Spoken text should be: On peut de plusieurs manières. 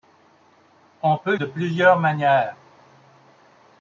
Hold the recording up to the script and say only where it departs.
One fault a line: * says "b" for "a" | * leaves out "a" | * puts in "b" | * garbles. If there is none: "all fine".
all fine